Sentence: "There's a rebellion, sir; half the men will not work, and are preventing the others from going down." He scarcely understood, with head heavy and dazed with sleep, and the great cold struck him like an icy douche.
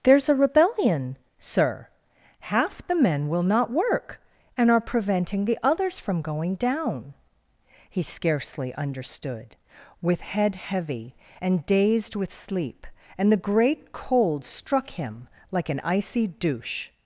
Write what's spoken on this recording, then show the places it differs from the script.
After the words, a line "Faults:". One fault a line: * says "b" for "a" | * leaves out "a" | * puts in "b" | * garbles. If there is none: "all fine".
"There's a rebellion, sir; half the men will not work, and are preventing the others from going down." He scarcely understood, with head heavy and dazed with sleep, and the great cold struck him like an icy douche.
Faults:
all fine